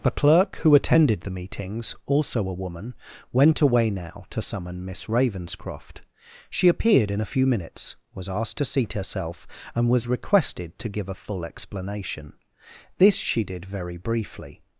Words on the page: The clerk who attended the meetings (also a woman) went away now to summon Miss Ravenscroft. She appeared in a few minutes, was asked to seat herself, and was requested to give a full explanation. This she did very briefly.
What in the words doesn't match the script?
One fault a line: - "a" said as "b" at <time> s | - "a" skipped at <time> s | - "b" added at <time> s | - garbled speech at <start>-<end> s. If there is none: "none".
none